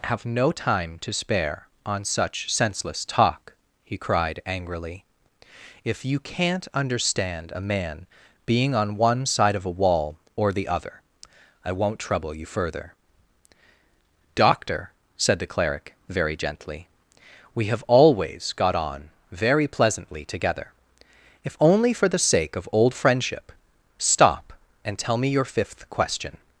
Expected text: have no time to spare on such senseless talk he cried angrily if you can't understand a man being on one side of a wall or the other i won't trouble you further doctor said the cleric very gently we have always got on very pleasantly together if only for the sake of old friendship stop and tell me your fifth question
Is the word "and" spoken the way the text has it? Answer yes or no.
yes